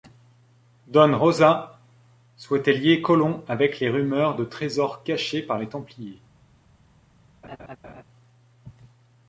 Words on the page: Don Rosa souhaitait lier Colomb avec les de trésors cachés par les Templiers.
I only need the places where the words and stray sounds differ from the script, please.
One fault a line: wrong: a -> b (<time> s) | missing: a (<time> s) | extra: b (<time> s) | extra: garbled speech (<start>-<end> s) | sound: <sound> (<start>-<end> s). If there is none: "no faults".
extra: rumeurs (3.9 s)
sound: laugh (7.4-8.0 s)